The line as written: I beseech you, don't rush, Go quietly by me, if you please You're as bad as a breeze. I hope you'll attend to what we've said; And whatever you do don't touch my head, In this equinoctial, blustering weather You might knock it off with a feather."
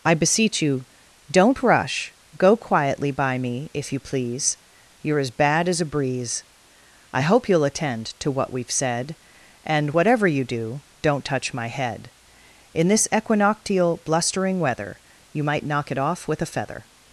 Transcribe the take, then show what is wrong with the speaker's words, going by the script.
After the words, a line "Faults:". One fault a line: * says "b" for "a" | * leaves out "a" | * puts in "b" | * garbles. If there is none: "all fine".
I beseech you, don't rush, Go quietly by me, if you please You're as bad as a breeze. I hope you'll attend to what we've said; And whatever you do don't touch my head, In this equinoctial, blustering weather You might knock it off with a feather."
Faults:
all fine